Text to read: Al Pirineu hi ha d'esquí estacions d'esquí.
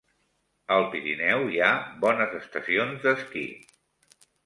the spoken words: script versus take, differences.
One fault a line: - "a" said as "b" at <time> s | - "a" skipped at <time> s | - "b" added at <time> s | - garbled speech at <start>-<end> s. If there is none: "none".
- "d'esquí" said as "bones" at 2.1 s